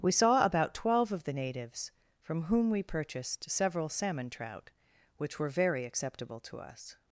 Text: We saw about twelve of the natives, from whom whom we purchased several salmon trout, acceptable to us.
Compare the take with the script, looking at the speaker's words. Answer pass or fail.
fail